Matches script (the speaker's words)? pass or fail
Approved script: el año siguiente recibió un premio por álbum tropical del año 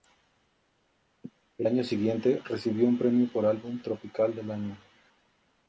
pass